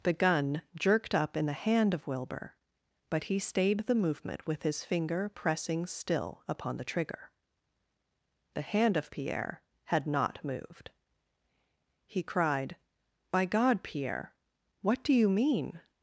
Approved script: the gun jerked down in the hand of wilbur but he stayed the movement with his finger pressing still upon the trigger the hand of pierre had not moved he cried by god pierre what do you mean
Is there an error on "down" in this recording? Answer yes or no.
yes